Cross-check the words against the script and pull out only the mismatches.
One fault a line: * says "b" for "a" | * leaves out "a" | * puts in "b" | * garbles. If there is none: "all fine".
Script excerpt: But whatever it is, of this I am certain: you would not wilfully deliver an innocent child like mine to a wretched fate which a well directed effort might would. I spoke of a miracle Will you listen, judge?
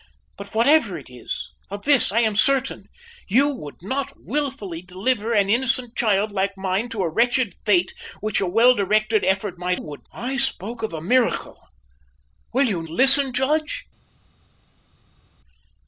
all fine